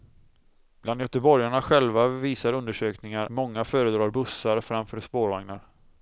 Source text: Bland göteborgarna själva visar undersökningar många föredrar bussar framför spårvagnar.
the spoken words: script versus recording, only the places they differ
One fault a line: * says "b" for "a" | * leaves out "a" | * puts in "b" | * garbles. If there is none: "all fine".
all fine